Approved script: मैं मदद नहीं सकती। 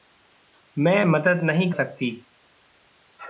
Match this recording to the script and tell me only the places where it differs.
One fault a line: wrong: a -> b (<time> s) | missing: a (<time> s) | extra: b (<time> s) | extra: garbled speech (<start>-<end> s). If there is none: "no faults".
no faults